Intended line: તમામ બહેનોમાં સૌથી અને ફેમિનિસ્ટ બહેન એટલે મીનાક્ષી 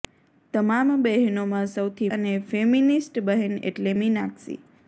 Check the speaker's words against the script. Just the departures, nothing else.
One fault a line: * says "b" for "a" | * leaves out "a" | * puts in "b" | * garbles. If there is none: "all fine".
all fine